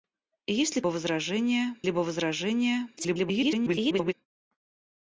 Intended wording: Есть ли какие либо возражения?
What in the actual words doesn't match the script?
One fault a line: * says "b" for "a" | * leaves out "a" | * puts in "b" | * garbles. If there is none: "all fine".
* says "возражения" for "какие"
* garbles